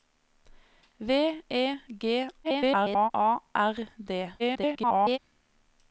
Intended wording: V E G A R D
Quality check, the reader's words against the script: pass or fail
fail